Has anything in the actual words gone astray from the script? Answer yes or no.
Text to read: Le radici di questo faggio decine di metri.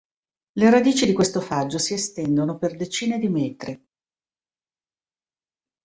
yes